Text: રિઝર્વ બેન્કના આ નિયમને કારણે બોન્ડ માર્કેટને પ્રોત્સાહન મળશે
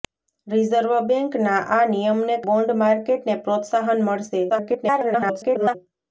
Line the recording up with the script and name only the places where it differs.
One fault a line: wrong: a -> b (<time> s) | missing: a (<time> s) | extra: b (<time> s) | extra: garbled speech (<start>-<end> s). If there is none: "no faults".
missing: કારણે (2.4 s)
extra: garbled speech (4.5-5.8 s)